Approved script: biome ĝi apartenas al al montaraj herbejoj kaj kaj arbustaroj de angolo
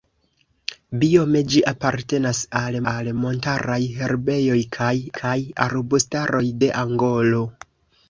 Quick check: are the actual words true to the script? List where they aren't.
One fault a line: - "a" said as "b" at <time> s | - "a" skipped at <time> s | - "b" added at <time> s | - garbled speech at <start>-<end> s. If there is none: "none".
none